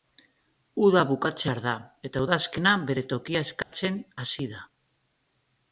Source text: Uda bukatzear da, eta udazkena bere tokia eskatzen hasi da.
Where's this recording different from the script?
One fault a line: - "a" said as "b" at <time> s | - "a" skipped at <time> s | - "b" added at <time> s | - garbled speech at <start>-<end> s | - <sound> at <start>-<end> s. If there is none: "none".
- dropout at 3.6-3.7 s